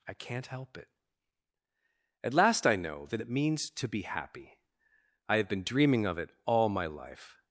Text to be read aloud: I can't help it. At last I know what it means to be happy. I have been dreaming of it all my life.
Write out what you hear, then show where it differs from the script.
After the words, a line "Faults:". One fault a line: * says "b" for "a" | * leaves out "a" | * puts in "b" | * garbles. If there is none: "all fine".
I can't help it. At last I know that it means to be happy. I have been dreaming of it all my life.
Faults:
* says "that" for "what"